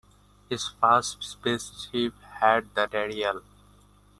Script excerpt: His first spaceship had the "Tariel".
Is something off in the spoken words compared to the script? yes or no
no